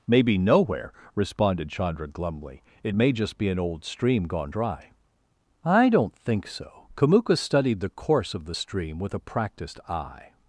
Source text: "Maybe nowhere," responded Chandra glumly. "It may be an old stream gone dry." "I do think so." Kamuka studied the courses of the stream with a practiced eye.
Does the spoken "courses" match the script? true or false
false